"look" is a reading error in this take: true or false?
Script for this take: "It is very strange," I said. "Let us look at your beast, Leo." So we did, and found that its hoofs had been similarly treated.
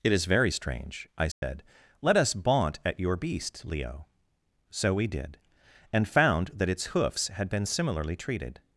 true